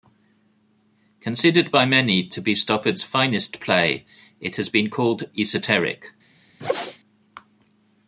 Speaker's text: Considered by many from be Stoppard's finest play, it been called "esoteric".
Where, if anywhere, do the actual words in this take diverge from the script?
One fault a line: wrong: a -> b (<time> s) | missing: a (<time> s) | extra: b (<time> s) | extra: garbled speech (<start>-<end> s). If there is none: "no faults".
wrong: from -> to (2.3 s)
extra: has (4.5 s)